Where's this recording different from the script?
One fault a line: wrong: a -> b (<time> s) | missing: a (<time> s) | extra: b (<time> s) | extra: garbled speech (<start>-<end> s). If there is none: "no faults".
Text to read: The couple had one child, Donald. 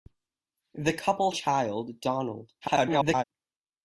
missing: had one (1.3 s)
extra: garbled speech (2.6-3.2 s)